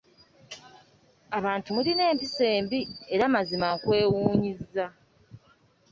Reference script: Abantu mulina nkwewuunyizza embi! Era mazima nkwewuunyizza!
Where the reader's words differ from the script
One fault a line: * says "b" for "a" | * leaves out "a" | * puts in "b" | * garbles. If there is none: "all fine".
* says "empisa" for "nkwewuunyizza"